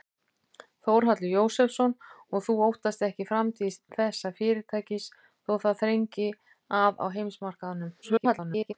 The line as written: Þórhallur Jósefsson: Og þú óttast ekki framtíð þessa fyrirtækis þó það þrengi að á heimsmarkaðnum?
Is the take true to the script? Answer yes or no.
no